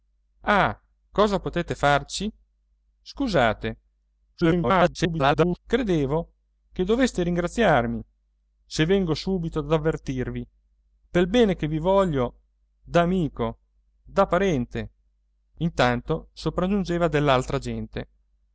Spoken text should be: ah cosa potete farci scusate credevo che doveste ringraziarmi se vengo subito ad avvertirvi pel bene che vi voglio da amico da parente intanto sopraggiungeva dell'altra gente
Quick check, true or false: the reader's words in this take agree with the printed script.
false